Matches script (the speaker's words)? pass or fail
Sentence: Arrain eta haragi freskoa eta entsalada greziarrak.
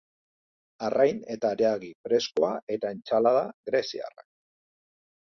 pass